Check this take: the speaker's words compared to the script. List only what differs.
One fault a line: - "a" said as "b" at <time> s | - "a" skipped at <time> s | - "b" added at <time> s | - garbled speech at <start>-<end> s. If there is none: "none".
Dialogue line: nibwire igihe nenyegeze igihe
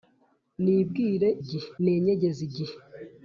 none